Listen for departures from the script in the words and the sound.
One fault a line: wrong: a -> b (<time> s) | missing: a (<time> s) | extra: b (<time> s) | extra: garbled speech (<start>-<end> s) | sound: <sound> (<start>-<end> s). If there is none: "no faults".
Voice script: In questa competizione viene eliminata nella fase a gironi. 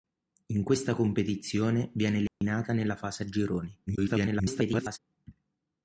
sound: dropout (2.3-2.4 s)
extra: garbled speech (3.9-5.0 s)